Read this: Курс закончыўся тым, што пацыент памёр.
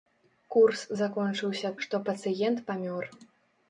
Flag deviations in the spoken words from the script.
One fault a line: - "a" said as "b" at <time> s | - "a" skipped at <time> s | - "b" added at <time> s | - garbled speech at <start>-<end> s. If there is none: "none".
- "тым" skipped at 1.7 s